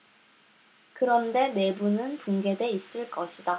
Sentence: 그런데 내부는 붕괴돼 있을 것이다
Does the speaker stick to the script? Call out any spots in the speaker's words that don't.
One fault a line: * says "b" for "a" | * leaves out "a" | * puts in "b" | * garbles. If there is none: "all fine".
all fine